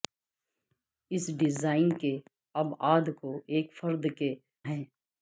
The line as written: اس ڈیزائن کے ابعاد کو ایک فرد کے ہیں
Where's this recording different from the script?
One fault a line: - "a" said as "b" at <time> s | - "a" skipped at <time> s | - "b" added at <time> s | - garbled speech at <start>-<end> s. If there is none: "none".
none